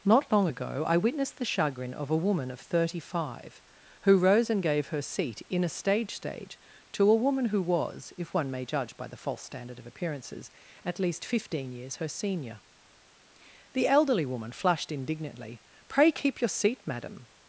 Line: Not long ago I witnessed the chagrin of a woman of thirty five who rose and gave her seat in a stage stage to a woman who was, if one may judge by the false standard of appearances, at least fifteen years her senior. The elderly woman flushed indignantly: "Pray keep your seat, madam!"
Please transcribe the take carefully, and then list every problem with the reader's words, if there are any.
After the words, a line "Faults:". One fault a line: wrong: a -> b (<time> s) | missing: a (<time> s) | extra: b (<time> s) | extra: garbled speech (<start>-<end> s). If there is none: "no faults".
Not long ago I witnessed the chagrin of a woman of thirty five who rose and gave her seat in a stage stage to a woman who was, if one may judge by the false standard of appearances, at least fifteen years her senior. The elderly woman flushed indignantly: "Pray keep your seat, madam!"
Faults:
no faults